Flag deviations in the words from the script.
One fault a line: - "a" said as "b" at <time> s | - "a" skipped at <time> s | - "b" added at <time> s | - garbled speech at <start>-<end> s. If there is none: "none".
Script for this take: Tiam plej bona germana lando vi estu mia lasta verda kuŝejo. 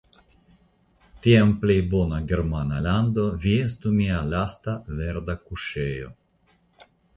none